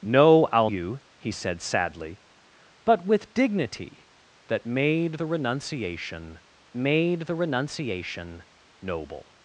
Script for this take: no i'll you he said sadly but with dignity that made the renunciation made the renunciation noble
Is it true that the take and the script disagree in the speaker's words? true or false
false